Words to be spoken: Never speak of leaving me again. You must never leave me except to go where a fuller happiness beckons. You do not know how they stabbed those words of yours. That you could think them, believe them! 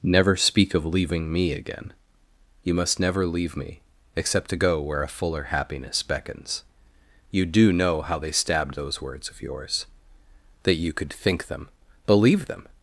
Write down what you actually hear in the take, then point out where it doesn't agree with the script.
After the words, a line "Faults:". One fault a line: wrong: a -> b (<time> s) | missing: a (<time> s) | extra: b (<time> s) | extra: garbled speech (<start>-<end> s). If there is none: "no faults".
Never speak of leaving me again. You must never leave me except to go where a fuller happiness beckons. You do know how they stabbed those words of yours. That you could think them, believe them!
Faults:
missing: not (7.7 s)